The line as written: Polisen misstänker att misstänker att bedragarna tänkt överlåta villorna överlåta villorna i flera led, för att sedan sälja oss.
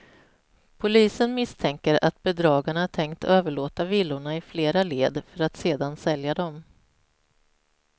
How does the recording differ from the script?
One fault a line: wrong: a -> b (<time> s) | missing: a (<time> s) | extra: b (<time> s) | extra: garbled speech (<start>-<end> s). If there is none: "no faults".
missing: misstänker att (2.2 s)
missing: överlåta villorna (4.4 s)
wrong: oss -> dem (6.3 s)